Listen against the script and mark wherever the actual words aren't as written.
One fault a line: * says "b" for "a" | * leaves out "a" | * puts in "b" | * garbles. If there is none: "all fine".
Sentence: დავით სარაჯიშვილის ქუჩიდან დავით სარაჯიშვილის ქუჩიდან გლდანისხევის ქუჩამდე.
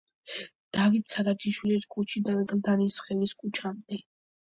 * leaves out "დავით სარაჯიშვილის ქუჩიდან"